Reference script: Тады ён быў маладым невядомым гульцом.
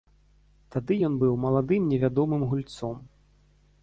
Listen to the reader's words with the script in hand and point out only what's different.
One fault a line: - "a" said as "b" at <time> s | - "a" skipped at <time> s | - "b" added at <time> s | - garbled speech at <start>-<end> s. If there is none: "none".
none